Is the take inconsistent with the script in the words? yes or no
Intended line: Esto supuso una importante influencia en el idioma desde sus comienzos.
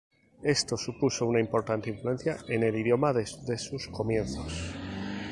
no